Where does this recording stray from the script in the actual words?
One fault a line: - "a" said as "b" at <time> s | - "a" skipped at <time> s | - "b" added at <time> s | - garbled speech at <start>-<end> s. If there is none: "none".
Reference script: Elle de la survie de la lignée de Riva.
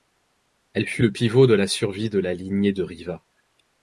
- "fut le pivot" added at 0.9 s